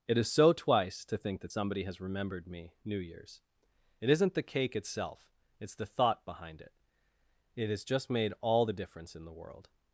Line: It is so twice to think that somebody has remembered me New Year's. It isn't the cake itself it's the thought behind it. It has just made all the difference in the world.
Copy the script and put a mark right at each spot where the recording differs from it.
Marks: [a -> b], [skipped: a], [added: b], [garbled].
It is so twice to think that somebody has remembered me New Year's. It isn't the cake itself it's the thought behind it. It has just made all the difference in the world.